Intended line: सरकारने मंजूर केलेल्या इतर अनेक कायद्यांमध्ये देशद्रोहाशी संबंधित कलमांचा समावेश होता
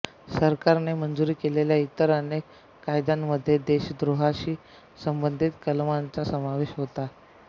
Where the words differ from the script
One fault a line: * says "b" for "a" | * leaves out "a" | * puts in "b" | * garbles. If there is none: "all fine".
all fine